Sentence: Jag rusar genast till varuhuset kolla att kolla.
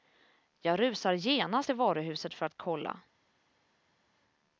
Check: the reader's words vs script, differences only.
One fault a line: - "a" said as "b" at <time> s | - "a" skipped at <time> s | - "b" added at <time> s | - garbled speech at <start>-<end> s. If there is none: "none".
- "kolla" said as "för" at 2.3 s